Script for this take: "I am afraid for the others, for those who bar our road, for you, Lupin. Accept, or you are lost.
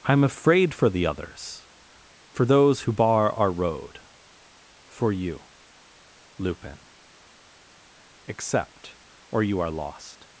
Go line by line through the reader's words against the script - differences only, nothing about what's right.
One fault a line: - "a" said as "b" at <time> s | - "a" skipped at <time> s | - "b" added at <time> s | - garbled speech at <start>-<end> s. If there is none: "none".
none